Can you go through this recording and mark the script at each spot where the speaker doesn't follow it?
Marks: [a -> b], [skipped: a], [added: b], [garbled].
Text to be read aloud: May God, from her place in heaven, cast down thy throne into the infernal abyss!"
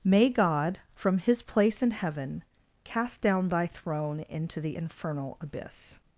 May God, from [her -> his] place in heaven, cast down thy throne into the infernal abyss!"